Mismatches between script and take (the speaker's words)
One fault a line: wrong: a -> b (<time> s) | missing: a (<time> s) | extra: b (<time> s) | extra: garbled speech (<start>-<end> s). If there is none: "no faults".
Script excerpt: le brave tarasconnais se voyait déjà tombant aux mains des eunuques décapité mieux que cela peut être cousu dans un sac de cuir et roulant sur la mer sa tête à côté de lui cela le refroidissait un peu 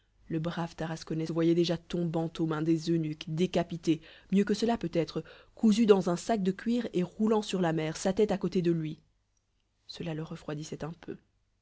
missing: se (1.3 s)